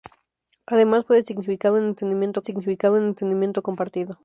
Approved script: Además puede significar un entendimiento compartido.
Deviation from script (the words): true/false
true